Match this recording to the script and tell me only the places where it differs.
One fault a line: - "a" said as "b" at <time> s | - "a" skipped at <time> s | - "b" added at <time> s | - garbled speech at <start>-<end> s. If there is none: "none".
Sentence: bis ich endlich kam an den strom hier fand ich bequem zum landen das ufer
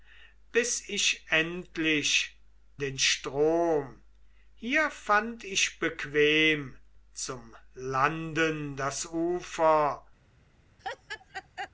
- "kam an" skipped at 2.4 s